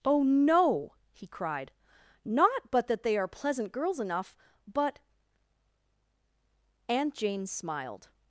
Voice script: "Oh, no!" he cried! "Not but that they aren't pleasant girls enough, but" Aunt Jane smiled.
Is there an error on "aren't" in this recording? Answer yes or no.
yes